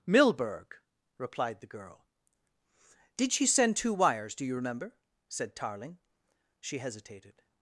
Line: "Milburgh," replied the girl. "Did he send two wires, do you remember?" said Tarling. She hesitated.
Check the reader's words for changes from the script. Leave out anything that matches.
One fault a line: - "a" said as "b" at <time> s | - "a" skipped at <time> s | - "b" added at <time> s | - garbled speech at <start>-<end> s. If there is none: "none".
- "he" said as "she" at 3.3 s